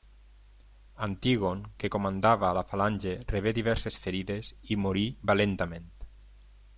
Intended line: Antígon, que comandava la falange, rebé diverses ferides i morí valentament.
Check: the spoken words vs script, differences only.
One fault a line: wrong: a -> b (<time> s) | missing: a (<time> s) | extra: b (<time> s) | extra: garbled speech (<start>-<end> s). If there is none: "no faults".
no faults